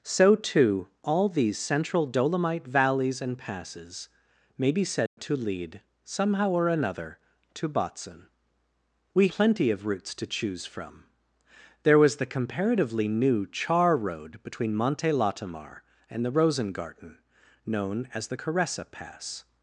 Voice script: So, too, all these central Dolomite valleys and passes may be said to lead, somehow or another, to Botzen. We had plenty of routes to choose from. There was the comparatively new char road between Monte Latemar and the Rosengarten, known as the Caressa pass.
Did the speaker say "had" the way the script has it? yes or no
no